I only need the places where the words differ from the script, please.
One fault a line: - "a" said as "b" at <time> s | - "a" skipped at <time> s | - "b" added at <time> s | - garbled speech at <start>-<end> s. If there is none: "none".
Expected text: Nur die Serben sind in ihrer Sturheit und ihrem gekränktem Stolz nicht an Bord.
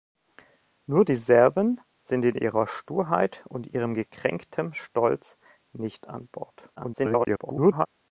- garbled speech at 6.8-7.9 s